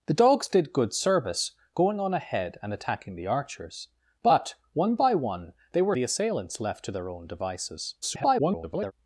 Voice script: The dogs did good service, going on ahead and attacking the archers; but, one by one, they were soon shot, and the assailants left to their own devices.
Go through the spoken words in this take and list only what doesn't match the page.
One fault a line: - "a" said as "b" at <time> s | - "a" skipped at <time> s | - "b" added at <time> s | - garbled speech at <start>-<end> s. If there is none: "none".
- "soon shot and" skipped at 5.9 s
- garbled speech at 8.0-8.9 s